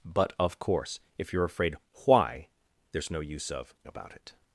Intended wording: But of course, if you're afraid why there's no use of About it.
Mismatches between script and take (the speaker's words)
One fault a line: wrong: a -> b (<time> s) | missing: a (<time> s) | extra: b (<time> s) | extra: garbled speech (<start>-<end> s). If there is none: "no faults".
no faults